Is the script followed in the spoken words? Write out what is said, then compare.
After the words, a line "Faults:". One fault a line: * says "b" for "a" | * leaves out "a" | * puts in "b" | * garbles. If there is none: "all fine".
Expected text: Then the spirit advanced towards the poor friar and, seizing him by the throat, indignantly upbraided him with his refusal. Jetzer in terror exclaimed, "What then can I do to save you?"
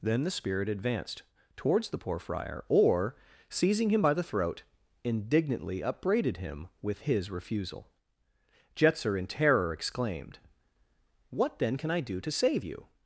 Then the spirit advanced towards the poor friar or, seizing him by the throat, indignantly upbraided him with his refusal. Jetzer in terror exclaimed, "What then can I do to save you?"
Faults:
* says "or" for "and"